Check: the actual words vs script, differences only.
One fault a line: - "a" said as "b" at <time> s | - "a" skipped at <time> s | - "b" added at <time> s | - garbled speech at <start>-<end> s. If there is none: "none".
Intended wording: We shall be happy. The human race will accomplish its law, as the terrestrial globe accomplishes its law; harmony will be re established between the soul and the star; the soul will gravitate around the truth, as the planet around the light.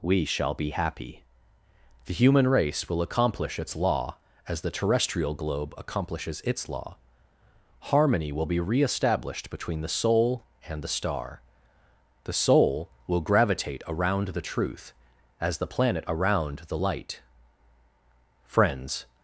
- "Friends" added at 18.5 s